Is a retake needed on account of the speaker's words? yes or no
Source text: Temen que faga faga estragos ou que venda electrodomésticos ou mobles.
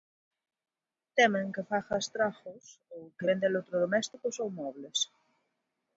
yes